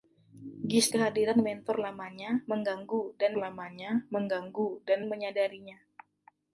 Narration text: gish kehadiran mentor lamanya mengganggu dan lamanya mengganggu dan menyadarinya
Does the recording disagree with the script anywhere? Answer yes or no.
no